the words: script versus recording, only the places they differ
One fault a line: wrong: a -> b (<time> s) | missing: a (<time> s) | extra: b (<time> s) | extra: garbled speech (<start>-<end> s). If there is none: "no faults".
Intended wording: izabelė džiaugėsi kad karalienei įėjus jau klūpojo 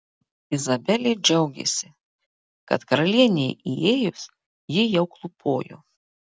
extra: ji (4.8 s)